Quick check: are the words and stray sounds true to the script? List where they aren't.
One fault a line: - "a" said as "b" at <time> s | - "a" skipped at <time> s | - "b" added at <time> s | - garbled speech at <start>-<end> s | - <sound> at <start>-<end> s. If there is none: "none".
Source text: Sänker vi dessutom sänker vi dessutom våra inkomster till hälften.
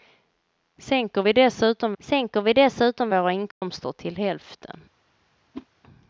- dropout at 3.5-3.6 s
- whoosh at 5.5-5.7 s